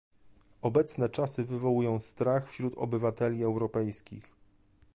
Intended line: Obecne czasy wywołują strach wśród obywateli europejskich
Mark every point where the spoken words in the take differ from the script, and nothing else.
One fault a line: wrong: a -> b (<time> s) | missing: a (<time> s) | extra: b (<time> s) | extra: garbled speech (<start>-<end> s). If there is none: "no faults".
no faults